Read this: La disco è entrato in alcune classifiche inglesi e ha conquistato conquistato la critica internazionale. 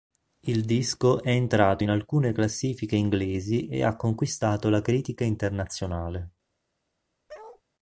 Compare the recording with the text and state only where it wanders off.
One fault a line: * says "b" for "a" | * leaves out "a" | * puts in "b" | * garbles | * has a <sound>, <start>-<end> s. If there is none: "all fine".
* says "Il" for "La"
* leaves out "conquistato"
* has a bark, 7.3-7.6 s